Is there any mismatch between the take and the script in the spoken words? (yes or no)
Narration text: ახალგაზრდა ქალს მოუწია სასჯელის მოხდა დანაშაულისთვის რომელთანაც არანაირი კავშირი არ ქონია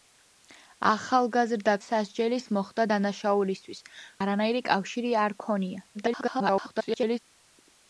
yes